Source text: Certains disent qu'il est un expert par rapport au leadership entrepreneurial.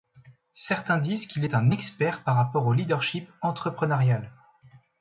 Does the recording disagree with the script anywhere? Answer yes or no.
no